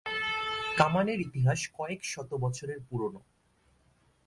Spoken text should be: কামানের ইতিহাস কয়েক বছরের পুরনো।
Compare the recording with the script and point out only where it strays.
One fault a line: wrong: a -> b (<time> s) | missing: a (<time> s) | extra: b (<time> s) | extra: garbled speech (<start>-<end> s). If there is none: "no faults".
extra: শত (2.0 s)